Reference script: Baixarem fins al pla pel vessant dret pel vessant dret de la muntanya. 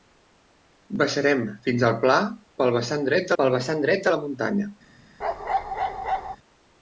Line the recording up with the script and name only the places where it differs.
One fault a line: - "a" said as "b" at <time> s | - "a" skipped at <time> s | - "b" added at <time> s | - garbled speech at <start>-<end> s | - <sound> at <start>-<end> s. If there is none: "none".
- bark at 5.2-6.4 s